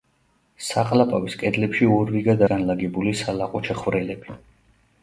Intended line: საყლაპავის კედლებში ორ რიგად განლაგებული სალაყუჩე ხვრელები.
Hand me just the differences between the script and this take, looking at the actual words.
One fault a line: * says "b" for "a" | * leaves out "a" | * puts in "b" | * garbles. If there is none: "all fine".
all fine